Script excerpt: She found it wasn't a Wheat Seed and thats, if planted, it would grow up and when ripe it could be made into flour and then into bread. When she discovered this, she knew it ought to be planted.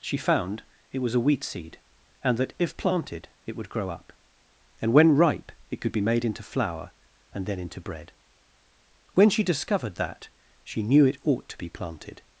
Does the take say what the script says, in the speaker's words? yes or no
no